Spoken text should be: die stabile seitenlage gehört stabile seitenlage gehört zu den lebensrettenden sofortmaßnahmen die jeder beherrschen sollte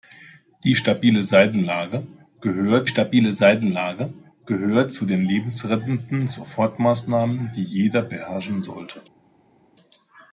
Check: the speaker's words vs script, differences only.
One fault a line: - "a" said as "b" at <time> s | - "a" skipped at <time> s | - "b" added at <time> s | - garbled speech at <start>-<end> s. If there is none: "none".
none